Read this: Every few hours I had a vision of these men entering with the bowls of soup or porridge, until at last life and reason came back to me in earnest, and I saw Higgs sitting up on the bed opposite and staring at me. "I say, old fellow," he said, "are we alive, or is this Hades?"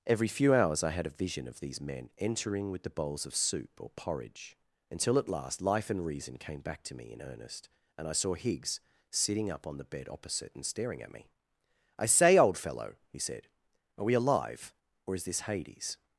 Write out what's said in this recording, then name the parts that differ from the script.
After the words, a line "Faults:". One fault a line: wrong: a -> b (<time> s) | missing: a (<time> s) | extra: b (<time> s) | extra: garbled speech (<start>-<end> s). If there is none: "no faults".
Every few hours I had a vision of these men entering with the bowls of soup or porridge, until at last life and reason came back to me in earnest, and I saw Higgs sitting up on the bed opposite and staring at me. "I say, old fellow," he said, "are we alive, or is this Hades?"
Faults:
no faults